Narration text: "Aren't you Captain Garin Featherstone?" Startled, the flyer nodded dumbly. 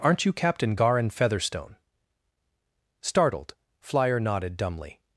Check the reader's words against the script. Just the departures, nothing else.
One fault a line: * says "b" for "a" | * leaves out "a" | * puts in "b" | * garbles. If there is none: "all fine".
* leaves out "the"